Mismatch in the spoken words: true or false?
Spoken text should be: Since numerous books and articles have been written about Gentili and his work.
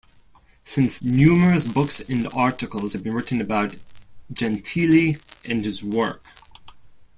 false